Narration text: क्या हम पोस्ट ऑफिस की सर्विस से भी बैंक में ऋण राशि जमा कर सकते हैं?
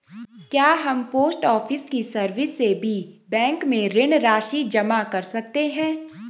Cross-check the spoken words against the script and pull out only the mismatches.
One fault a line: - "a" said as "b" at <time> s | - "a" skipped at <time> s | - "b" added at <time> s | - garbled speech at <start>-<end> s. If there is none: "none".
none